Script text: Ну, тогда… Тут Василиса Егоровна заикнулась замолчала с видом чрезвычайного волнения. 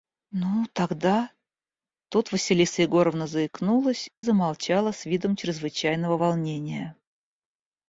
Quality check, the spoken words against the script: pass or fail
pass